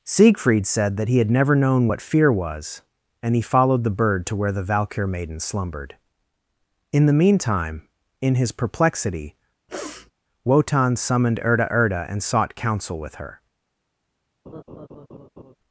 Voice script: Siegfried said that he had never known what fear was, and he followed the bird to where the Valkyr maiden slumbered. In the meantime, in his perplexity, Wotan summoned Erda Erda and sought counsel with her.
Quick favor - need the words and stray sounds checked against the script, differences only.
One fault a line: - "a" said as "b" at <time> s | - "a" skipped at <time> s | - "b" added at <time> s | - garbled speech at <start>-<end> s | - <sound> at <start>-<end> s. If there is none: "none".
- sniff at 9.7-10.1 s
- laugh at 14.5-15.6 s